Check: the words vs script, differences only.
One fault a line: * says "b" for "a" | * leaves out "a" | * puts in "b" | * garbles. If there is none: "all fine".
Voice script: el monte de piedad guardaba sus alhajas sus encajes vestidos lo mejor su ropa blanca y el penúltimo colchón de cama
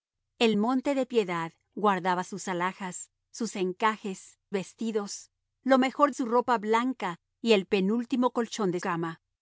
all fine